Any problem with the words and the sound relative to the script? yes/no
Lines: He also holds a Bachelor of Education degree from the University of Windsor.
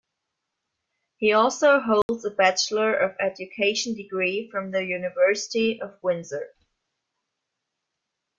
yes